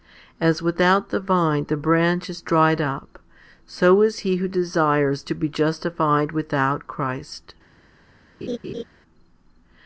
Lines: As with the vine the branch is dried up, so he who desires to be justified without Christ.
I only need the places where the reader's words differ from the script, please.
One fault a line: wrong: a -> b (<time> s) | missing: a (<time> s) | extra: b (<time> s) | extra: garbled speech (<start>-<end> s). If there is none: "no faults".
wrong: with -> without (0.6 s)
extra: is (4.0 s)